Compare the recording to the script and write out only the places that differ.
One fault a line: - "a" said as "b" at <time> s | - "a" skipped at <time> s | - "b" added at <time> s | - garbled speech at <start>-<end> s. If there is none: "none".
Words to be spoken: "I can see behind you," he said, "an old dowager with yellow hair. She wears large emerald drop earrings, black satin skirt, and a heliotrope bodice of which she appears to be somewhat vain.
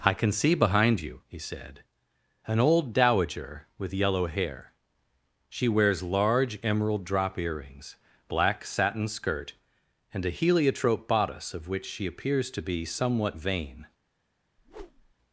none